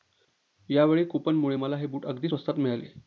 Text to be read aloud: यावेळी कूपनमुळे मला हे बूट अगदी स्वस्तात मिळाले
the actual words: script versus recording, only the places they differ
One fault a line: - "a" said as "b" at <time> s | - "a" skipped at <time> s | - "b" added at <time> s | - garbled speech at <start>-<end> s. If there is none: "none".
none